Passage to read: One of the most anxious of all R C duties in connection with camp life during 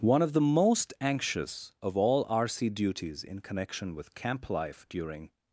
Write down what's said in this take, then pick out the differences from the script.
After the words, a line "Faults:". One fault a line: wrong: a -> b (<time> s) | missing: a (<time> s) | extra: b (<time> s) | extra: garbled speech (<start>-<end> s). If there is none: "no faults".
One of the most anxious of all R C duties in connection with camp life during
Faults:
no faults